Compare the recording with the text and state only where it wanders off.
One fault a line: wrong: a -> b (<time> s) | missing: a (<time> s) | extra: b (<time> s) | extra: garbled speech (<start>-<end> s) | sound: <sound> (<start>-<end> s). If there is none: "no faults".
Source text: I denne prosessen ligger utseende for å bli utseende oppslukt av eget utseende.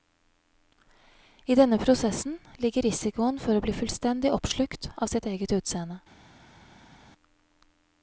wrong: utseende -> risikoen (2.9 s)
wrong: utseende -> fullstendig (3.8 s)
extra: sitt (5.2 s)